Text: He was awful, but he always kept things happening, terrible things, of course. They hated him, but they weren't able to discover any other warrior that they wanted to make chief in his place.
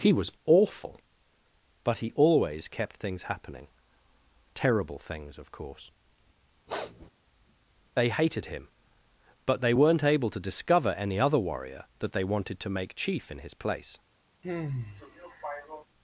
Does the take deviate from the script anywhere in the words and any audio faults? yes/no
yes